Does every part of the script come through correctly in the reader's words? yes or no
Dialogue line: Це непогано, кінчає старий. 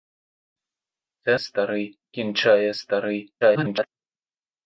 no